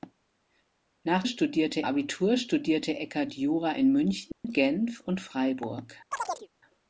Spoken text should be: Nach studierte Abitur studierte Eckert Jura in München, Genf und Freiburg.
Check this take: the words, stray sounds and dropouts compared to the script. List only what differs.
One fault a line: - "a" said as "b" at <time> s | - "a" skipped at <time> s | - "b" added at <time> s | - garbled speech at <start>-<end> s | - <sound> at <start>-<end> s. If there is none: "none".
- dropout at 4.3-4.4 s
- chirp at 6.1-6.5 s